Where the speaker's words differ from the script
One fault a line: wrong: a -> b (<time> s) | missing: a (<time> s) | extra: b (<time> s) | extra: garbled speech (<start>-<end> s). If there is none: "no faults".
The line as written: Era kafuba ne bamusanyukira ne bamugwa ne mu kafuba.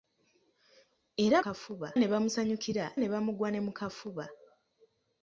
no faults